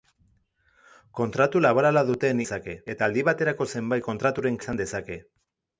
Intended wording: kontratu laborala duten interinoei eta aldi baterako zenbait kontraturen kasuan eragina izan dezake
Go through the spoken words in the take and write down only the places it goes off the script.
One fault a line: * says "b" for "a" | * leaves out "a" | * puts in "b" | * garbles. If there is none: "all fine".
* says "dezake" for "interinoei"
* leaves out "kasuan eragina"